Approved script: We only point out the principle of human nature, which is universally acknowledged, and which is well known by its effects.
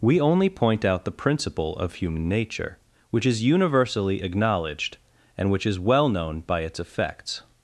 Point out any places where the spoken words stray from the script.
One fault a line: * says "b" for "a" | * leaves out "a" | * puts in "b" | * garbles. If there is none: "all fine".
all fine